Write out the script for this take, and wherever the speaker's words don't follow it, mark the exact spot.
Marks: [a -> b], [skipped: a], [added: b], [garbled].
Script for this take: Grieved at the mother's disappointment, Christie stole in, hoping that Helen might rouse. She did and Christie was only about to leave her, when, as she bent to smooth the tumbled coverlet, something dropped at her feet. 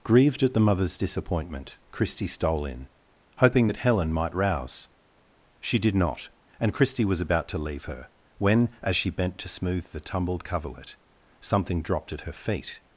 Grieved at the mother's disappointment, Christie stole in, hoping that Helen might rouse. She did [added: not] and Christie was [skipped: only] about to leave her, when, as she bent to smooth the tumbled coverlet, something dropped at her feet.